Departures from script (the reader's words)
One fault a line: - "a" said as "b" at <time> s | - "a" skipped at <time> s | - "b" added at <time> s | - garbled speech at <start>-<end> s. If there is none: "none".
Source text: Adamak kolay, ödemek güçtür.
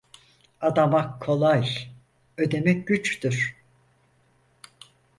none